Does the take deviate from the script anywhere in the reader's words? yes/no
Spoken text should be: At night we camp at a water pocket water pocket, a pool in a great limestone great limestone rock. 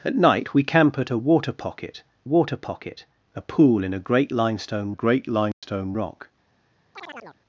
no